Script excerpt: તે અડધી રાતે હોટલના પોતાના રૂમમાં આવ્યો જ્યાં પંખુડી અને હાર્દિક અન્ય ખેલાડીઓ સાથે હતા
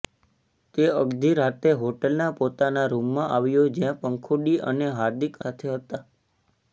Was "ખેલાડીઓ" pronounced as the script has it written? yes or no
no